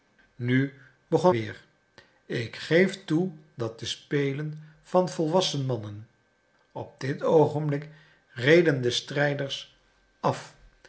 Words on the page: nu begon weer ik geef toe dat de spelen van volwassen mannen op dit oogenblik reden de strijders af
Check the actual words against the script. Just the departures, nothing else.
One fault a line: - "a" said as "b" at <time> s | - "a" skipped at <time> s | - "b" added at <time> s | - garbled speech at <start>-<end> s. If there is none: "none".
none